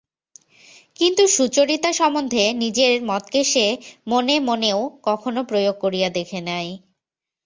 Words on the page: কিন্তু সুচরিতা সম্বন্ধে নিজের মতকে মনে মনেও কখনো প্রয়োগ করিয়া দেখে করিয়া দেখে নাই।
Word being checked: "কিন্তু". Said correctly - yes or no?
yes